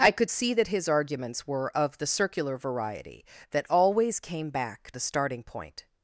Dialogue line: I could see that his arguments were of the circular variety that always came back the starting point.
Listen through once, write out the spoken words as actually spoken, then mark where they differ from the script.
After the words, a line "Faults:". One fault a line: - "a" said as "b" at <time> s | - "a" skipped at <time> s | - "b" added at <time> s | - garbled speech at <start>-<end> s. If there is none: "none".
I could see that his arguments were of the circular variety that always came back the starting point.
Faults:
none